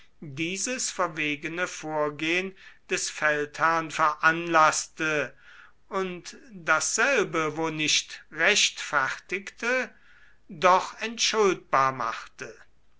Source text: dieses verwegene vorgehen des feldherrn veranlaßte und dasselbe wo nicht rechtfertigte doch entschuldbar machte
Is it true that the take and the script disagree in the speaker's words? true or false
false